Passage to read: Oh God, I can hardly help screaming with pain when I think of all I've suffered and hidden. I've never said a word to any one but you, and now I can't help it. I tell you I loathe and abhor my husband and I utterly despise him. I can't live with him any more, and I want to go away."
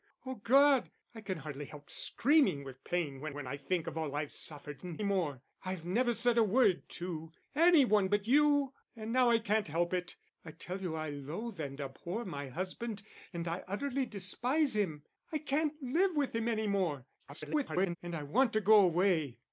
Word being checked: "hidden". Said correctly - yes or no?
no